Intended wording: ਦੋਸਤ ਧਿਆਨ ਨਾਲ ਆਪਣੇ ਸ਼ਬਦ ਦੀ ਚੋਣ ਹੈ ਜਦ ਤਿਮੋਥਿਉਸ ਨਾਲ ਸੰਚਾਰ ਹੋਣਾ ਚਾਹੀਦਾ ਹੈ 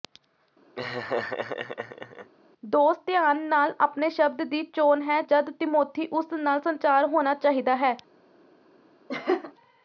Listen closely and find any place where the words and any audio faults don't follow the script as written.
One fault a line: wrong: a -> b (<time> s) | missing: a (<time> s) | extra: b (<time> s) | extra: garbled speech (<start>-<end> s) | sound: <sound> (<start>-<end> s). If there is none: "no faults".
sound: laugh (0.8-2.3 s)
sound: laugh (9.1-9.5 s)